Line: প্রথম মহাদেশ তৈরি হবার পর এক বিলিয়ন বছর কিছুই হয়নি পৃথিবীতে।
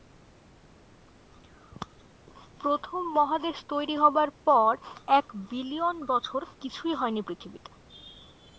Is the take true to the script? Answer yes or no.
yes